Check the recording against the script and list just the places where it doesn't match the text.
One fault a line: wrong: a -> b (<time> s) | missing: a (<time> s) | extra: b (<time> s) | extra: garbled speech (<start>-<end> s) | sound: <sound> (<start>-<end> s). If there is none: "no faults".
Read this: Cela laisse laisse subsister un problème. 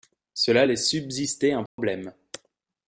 missing: laisse (0.9 s)
sound: dropout (1.7-1.8 s)